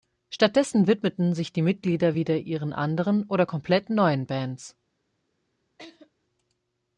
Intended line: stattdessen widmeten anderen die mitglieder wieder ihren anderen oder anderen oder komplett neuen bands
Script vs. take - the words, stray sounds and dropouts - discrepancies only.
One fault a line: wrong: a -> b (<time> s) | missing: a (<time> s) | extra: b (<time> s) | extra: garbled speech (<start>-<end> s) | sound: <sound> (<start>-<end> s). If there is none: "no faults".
wrong: anderen -> sich (1.3 s)
missing: anderen oder (3.5 s)
sound: laugh (5.8-6.1 s)